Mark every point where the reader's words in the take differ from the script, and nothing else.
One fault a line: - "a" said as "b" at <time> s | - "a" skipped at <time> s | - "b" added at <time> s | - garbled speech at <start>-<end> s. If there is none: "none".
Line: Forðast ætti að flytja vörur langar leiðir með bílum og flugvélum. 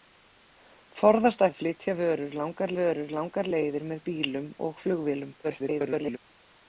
- "ætti" skipped at 1.4 s
- "vörur langar" added at 2.8 s
- garbled speech at 5.4-6.2 s